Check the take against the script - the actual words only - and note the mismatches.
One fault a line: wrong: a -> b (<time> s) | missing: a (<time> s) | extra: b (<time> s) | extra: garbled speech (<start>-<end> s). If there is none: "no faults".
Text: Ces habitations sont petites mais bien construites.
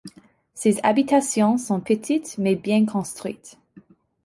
no faults